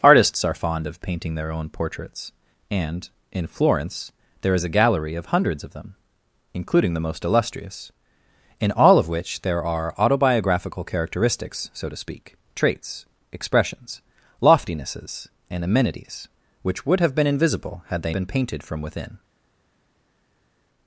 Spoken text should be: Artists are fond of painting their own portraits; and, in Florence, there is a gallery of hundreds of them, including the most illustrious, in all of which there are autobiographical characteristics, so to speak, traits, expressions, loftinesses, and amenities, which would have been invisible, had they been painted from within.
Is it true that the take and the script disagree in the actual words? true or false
false